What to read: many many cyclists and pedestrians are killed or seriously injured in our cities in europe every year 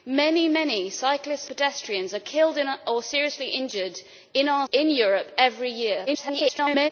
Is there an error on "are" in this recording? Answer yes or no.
no